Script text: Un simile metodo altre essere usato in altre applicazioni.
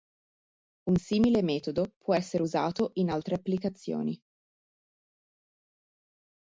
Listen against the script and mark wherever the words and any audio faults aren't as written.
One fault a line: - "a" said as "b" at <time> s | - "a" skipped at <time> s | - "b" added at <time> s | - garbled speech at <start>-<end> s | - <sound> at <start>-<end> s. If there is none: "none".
- "altre" said as "può" at 2.0 s